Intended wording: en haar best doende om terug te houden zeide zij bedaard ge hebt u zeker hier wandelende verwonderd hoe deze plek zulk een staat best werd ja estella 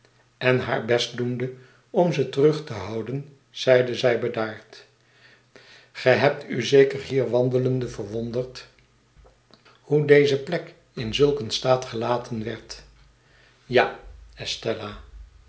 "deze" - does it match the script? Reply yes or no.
yes